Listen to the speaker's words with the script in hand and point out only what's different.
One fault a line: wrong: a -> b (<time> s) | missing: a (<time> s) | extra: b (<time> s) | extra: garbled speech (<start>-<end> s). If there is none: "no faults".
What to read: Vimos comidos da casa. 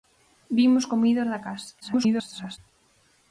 extra: garbled speech (1.8-2.6 s)